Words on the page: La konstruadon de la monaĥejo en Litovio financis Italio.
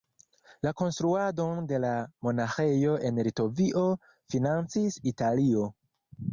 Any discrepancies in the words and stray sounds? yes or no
no